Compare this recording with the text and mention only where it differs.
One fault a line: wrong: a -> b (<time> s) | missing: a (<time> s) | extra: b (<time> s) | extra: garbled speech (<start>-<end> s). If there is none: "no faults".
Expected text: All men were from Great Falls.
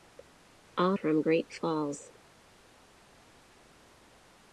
missing: men were (1.0 s)